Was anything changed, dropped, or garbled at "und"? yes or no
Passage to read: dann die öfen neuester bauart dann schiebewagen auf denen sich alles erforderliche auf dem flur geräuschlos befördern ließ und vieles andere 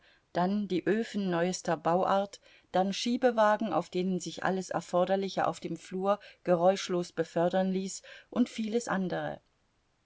no